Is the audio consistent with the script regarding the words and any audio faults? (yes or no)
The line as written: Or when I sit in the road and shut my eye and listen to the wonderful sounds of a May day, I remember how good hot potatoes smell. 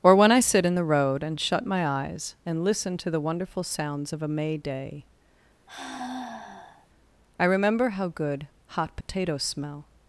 no